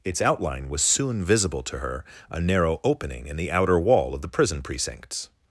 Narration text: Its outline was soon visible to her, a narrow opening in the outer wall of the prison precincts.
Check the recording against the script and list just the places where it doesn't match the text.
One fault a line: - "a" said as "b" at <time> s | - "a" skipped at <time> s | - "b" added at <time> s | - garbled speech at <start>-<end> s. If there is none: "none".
none